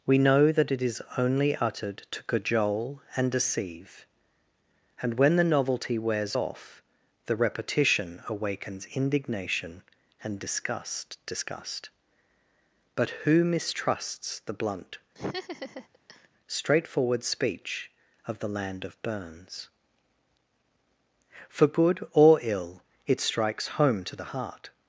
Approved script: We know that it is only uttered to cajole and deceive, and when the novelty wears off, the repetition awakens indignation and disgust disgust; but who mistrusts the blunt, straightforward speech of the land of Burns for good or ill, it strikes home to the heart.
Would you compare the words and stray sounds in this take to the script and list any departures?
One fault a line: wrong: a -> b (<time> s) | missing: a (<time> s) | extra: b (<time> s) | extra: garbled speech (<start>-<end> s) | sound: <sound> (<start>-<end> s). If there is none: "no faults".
sound: laugh (15.2-16.3 s)